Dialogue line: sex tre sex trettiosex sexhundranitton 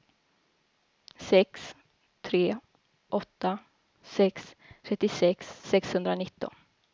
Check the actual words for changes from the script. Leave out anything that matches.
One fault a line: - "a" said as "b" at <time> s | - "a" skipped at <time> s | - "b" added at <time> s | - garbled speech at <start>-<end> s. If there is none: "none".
- "åtta" added at 3.1 s